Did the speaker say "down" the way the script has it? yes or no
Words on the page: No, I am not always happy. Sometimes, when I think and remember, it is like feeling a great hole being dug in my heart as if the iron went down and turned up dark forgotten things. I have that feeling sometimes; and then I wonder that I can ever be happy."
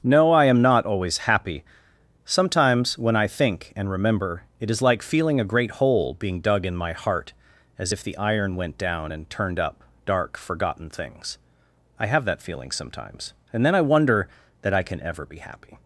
yes